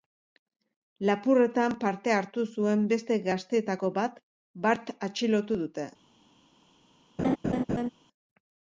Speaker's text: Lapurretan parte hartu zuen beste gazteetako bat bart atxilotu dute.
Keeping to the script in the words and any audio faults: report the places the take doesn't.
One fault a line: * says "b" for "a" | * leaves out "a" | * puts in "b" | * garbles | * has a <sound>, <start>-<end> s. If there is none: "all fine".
* has a laugh, 7.2-7.9 s